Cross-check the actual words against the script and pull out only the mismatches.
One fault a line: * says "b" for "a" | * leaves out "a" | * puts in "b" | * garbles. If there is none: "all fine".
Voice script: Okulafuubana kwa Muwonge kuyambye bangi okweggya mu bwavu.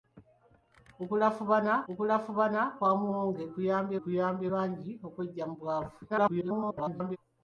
* puts in "okulafuubana"
* puts in "kuyambye"
* garbles